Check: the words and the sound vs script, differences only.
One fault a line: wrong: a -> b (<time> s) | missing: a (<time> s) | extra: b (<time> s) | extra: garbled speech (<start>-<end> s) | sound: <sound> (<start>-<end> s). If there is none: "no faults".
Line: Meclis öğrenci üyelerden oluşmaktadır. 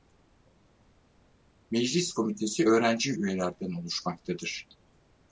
extra: komitesi (2.1 s)